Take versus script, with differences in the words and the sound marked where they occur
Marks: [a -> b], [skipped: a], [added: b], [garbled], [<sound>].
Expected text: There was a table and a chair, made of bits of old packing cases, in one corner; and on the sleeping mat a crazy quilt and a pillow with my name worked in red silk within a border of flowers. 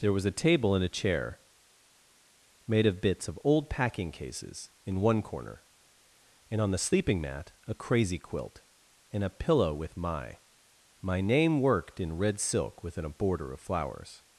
There was a table and a chair, made of bits of old packing cases, in one corner; and on the sleeping mat a crazy quilt and a pillow with my [added: my] name worked in red silk within a border of flowers.